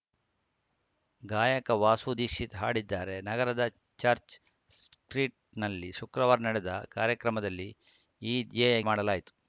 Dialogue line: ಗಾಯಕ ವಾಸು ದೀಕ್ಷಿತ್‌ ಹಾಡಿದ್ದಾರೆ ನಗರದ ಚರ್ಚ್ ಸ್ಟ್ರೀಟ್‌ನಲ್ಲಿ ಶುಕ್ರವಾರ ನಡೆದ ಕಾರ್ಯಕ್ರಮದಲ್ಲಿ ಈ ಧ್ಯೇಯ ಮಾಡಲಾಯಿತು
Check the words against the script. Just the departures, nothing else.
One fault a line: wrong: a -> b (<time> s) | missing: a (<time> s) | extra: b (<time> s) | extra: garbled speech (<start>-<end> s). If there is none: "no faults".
no faults